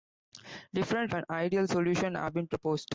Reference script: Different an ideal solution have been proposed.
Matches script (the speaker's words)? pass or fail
pass